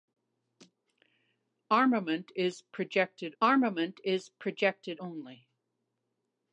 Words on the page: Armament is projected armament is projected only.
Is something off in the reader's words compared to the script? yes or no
no